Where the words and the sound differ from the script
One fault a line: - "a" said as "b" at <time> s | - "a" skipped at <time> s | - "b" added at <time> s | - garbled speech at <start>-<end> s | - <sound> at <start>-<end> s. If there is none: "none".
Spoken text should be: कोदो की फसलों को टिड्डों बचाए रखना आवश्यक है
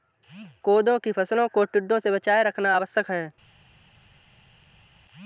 - "से" added at 2.0 s